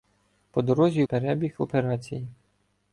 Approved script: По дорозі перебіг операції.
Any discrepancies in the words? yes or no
no